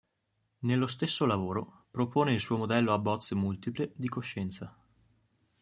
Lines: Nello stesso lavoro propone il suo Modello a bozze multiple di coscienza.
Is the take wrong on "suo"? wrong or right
right